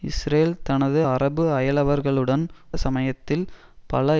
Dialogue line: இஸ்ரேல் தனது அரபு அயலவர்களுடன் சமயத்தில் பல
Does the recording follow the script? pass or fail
pass